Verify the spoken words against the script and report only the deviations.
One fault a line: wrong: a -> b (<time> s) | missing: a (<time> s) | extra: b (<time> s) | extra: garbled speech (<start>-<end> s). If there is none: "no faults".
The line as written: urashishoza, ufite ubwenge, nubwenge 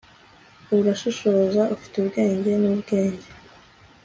no faults